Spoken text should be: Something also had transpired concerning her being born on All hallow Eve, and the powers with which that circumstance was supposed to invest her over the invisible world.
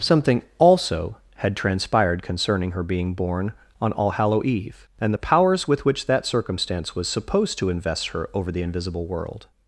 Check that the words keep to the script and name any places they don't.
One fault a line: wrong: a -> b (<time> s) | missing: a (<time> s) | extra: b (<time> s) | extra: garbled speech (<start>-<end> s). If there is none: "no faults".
no faults